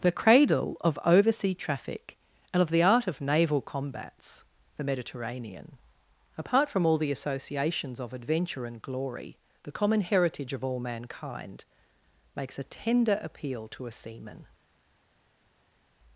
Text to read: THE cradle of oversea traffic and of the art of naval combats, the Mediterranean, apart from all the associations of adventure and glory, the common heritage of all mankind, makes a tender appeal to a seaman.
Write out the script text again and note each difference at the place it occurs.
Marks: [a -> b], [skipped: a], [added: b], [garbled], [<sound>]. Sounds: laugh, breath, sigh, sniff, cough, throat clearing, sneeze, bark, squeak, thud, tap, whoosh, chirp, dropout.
THE cradle of oversea traffic and of the art of naval combats, the Mediterranean, apart from all the associations of adventure and glory, the common heritage of all mankind, makes a tender appeal to a seaman.